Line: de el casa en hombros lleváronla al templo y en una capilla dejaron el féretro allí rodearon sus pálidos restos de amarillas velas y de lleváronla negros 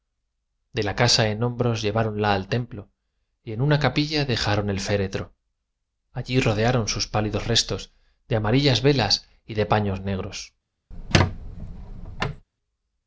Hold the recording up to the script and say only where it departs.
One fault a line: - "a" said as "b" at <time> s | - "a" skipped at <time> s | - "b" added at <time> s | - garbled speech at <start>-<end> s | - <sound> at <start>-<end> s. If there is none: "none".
- "el" said as "la" at 0.8 s
- "lleváronla" said as "paños" at 9.7 s
- squeak at 10.9-12.4 s